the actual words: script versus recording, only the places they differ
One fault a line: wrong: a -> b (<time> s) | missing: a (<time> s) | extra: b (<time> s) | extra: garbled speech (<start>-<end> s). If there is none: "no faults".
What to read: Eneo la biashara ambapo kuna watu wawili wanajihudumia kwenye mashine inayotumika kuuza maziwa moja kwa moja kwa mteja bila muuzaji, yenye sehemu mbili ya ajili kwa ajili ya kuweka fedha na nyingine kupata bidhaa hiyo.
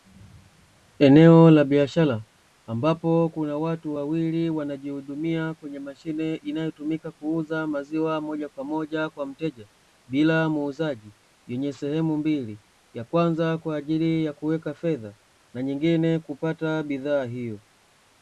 wrong: ajili -> kwanza (13.0 s)